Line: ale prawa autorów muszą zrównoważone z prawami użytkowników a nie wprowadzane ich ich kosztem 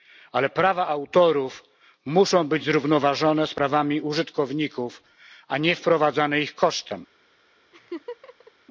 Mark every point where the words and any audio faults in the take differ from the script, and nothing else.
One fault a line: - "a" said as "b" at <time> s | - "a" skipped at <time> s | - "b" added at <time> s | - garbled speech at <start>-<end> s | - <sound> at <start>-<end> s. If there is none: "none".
- "być" added at 2.5 s
- "ich" skipped at 6.5 s
- laugh at 7.7-8.5 s